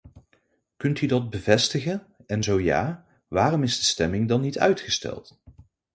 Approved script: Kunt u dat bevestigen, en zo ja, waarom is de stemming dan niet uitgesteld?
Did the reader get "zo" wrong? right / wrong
right